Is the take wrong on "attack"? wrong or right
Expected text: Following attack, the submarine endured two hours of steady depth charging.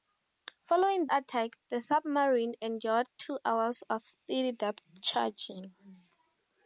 right